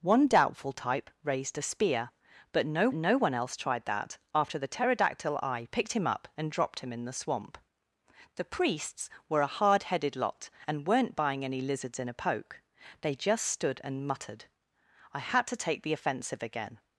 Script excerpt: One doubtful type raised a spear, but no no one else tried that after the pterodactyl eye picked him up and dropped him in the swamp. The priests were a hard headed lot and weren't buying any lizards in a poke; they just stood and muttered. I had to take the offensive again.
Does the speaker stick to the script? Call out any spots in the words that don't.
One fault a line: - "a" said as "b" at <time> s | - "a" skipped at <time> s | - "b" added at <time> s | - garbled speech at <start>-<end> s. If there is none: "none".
none